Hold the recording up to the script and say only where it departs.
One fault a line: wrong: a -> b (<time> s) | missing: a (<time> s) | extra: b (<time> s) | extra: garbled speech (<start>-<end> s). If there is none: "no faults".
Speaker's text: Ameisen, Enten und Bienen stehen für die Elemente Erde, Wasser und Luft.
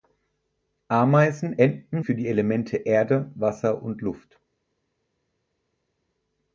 missing: und Bienen stehen (2.0 s)